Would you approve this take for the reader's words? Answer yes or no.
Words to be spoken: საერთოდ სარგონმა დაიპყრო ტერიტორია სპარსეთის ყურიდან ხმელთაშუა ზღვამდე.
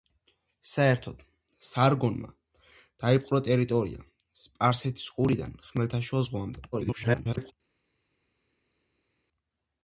no